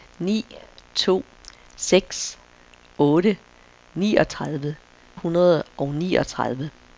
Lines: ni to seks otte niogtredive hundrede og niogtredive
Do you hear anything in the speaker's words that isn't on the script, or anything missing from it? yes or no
no